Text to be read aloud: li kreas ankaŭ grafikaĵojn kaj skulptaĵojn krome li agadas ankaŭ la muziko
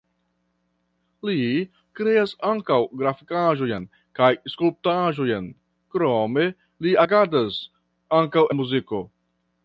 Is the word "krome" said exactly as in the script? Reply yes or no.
yes